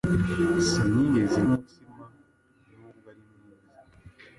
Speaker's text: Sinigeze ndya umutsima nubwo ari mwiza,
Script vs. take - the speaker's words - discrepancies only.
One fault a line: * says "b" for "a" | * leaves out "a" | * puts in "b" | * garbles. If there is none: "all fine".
* leaves out "ndya"